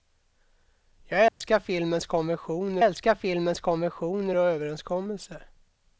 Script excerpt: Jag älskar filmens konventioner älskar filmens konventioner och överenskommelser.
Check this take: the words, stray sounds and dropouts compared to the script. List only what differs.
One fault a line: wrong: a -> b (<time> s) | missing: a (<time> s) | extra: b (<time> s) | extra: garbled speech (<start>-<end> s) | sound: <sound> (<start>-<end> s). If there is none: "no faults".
sound: dropout (1.3-1.4 s)